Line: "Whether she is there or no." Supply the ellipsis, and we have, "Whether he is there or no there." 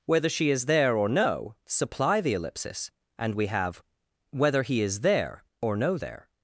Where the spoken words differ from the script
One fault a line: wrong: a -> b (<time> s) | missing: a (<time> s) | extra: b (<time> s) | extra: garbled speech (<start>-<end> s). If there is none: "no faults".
no faults